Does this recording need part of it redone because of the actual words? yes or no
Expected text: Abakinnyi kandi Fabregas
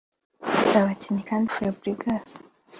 no